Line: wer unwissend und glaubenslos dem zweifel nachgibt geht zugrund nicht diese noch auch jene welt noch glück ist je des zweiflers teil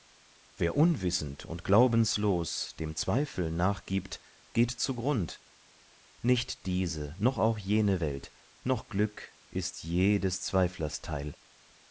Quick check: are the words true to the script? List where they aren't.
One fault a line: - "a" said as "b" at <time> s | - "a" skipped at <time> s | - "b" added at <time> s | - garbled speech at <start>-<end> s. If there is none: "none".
none